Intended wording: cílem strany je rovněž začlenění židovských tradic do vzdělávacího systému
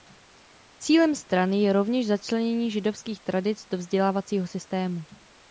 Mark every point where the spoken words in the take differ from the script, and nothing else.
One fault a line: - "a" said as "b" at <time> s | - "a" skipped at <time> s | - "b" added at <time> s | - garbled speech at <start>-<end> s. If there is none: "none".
none